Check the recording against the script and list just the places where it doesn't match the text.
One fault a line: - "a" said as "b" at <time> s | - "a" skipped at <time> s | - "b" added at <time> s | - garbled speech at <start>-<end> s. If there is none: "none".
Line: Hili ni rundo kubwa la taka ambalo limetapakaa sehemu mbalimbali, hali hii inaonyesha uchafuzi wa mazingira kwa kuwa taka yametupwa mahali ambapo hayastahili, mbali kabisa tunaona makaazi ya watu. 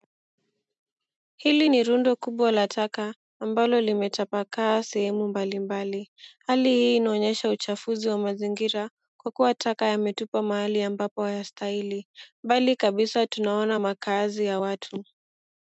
none